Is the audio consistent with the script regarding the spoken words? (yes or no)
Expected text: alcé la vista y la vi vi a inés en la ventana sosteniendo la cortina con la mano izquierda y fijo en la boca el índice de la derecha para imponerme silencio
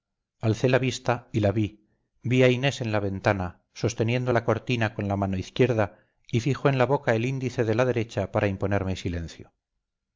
yes